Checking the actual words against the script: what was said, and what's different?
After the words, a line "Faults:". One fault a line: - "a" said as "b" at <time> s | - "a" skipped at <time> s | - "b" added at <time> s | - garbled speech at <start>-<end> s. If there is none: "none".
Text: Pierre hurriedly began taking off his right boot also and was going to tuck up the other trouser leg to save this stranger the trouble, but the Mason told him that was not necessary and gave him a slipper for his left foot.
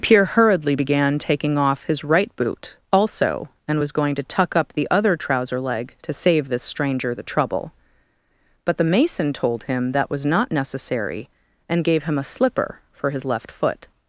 Pierre hurriedly began taking off his right boot also and was going to tuck up the other trouser leg to save this stranger the trouble, but the Mason told him that was not necessary and gave him a slipper for his left foot.
Faults:
none